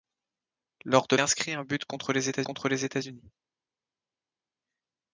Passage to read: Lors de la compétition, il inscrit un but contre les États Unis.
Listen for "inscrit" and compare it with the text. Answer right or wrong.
wrong